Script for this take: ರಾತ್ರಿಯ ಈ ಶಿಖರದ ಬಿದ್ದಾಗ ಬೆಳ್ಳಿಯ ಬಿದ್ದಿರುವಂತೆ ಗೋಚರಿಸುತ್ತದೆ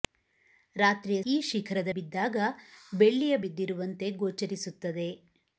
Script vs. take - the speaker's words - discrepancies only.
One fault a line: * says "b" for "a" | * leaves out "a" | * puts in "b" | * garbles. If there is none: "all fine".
all fine